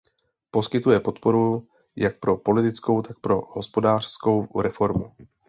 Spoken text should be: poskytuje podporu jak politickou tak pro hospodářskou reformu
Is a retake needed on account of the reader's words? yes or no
yes